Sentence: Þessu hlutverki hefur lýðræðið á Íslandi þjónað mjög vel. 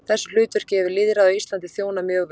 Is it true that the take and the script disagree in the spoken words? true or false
false